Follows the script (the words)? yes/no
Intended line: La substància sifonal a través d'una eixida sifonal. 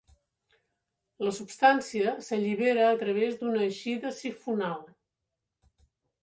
no